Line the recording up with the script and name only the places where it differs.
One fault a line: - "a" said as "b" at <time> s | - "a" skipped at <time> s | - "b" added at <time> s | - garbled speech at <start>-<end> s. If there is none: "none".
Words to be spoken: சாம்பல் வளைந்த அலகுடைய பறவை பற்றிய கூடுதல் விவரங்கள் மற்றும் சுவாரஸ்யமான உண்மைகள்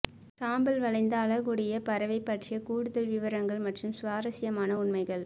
none